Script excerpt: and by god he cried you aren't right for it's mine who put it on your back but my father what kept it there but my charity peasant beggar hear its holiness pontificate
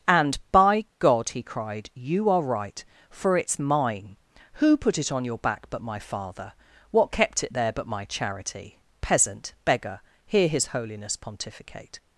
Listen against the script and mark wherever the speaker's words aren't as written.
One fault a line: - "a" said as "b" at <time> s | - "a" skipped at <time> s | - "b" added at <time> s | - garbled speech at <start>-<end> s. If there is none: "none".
- "aren't" said as "are" at 2.3 s
- "its" said as "his" at 10.5 s